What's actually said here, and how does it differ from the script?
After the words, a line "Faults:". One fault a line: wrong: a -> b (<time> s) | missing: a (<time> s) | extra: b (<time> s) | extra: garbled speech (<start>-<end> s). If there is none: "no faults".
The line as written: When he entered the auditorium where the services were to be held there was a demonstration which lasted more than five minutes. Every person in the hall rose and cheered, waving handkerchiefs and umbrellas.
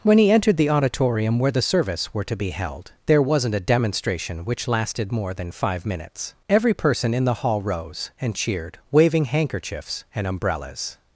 When he entered the auditorium where the service were to be held there wasn't a demonstration which lasted more than five minutes. Every person in the hall rose and cheered, waving handkerchiefs and umbrellas.
Faults:
wrong: services -> service (1.6 s)
wrong: was -> wasn't (3.2 s)